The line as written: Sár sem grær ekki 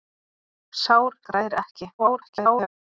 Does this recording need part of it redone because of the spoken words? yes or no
yes